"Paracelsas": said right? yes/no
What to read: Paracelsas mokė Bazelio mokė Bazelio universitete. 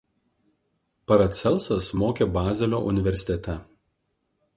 yes